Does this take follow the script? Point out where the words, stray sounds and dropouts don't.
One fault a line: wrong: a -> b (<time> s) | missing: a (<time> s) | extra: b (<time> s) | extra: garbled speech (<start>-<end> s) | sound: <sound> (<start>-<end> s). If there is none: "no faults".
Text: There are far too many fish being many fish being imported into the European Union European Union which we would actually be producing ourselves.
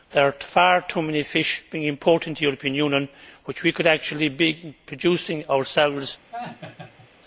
missing: many fish being (1.8 s)
missing: European Union (3.1 s)
wrong: would -> could (3.7 s)
sound: laugh (6.3-7.1 s)